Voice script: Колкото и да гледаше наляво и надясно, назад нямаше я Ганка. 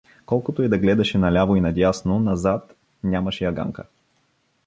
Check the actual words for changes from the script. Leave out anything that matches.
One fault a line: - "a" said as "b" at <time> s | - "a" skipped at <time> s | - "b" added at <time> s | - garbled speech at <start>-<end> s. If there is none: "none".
none